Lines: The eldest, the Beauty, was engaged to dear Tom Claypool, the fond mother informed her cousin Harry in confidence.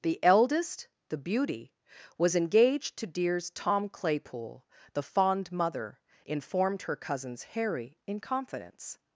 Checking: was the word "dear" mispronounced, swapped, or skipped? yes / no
yes